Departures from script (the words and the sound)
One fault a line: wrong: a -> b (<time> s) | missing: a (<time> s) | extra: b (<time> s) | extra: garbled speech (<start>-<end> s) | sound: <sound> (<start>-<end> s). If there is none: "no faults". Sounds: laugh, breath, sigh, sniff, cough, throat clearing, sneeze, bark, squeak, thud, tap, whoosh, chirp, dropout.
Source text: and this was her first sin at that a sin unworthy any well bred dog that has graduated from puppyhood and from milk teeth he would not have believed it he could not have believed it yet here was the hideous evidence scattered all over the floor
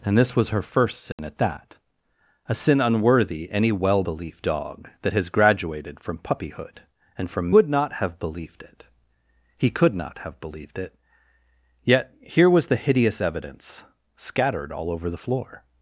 sound: dropout (1.1-1.2 s)
wrong: bred -> believed (4.0 s)
missing: milk teeth he (7.6 s)